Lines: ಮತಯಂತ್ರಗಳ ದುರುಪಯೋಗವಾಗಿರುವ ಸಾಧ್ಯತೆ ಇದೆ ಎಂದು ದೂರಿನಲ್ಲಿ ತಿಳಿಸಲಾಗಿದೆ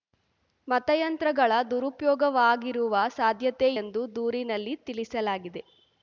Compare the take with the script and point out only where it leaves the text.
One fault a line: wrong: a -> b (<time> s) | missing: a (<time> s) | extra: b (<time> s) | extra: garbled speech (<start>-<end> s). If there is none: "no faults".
missing: ಇದೆ (3.7 s)